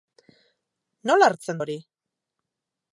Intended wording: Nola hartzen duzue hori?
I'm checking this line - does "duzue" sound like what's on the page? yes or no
no